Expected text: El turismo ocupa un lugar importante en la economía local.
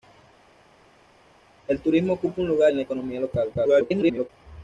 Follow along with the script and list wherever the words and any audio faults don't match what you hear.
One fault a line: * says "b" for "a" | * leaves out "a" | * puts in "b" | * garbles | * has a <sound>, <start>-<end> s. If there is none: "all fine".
* leaves out "importante"
* garbles